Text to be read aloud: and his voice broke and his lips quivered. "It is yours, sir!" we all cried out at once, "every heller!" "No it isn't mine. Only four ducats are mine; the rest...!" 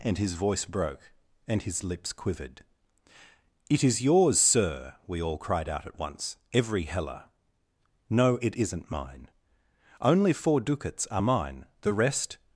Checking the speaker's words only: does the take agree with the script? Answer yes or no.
yes